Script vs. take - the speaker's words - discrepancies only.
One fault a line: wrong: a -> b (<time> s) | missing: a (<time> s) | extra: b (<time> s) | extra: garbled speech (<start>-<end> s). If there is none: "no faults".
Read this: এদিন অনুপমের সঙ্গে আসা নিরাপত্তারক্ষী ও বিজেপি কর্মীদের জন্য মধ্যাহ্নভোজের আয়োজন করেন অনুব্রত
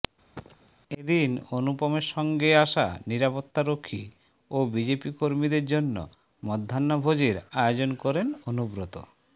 no faults